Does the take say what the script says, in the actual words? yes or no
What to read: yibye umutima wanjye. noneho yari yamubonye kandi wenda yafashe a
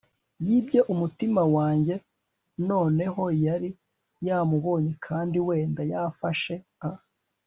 yes